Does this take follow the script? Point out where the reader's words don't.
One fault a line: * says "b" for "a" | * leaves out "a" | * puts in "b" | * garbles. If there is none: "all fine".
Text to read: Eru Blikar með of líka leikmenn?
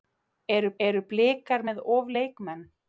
* puts in "eru"
* leaves out "líka"